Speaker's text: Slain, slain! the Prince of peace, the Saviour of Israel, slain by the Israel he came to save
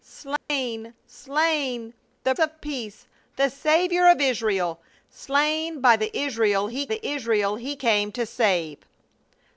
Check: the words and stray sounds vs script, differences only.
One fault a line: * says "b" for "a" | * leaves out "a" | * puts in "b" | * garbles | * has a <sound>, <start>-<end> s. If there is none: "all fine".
* has a dropout, 0.4-0.5 s
* leaves out "Prince"
* puts in "the Israel he"